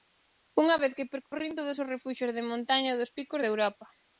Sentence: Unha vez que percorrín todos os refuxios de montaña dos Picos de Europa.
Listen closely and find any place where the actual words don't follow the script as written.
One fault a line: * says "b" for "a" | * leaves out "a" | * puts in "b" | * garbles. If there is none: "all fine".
all fine